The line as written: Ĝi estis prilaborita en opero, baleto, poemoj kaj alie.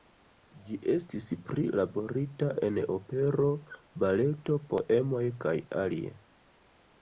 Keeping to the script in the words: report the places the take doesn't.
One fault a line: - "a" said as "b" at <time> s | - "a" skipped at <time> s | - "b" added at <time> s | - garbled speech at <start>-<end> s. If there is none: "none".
none